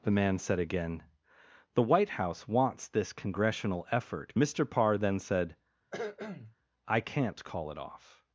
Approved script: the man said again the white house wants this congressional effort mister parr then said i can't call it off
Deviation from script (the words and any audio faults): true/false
true